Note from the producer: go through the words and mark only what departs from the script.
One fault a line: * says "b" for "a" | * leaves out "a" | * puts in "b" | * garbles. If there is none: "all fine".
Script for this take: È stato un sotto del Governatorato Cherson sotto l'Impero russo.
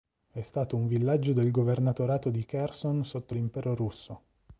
* says "villaggio" for "sotto"
* puts in "di"